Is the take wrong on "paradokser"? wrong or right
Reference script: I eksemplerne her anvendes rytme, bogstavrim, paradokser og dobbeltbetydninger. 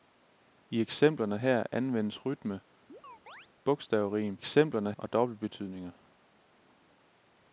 wrong